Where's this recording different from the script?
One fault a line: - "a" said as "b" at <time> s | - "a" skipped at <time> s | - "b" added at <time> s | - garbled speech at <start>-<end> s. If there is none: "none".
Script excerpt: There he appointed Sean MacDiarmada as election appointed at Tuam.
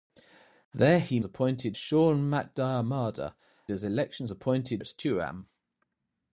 none